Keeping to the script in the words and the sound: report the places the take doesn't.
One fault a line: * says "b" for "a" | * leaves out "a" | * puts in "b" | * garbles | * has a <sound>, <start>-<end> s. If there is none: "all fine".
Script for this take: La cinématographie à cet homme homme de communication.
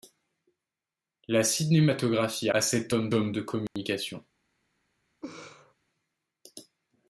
* has a dropout, 3.7-3.8 s
* has a laugh, 5.2-5.7 s